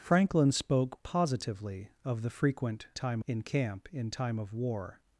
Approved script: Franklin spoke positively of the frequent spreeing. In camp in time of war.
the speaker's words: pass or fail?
fail